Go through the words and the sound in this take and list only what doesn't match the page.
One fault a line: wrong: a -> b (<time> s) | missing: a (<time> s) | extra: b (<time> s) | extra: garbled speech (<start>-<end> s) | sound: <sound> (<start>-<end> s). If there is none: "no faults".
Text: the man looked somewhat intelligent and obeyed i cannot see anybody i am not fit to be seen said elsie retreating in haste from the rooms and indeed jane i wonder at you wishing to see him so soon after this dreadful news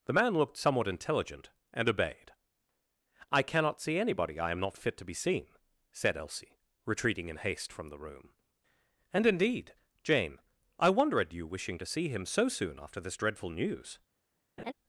wrong: rooms -> room (8.0 s)
sound: laugh (14.6-14.7 s)